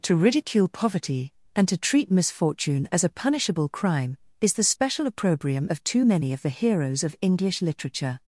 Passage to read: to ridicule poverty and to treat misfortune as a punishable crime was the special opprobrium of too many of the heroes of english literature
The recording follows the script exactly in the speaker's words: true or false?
false